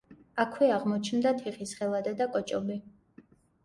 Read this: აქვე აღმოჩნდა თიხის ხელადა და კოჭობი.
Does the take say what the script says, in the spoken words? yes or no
yes